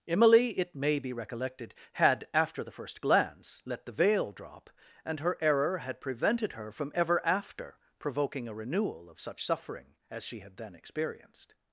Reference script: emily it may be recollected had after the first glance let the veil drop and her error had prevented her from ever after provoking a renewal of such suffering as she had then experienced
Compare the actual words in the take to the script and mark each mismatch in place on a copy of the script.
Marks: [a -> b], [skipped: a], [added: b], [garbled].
emily it may be recollected had after the first glance let the veil drop and her error had prevented her from ever after provoking a renewal of such suffering as she had then experienced